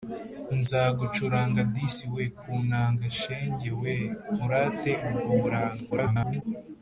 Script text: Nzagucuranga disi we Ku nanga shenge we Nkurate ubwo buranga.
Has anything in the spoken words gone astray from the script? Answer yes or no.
yes